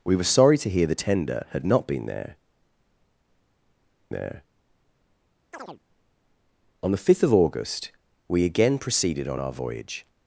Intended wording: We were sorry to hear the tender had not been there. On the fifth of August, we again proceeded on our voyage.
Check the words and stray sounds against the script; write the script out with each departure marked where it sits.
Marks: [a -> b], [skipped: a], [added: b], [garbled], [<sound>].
We were sorry to hear the tender had not been there. [added: there] [chirp] On the fifth of August, we again proceeded on our voyage.